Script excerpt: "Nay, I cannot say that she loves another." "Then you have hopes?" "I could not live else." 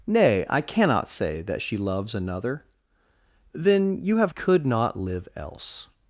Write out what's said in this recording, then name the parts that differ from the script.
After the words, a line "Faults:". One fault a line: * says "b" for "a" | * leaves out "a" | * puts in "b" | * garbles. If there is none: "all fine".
"Nay, I cannot say that she loves another." "Then you have could not live else."
Faults:
* leaves out "hopes I"